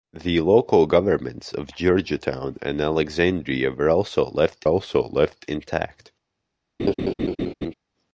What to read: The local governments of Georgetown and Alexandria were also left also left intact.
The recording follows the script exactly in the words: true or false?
true